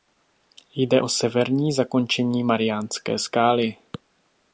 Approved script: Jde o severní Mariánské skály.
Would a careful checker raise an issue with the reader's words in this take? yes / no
yes